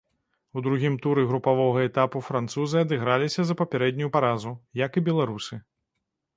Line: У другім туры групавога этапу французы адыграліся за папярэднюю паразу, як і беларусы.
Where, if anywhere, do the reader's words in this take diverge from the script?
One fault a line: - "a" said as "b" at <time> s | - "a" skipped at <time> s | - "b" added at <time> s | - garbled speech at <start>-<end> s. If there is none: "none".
none